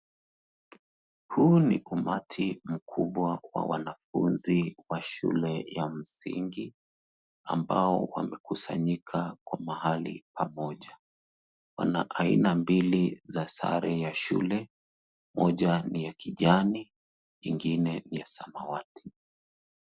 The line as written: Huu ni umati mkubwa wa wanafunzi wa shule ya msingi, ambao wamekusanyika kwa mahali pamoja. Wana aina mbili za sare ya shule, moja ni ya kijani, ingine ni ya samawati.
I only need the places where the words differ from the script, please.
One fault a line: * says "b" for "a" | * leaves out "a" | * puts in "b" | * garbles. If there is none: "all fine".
all fine